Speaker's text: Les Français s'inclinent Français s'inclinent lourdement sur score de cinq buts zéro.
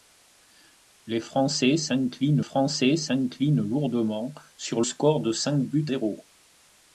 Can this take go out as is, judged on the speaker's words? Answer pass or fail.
pass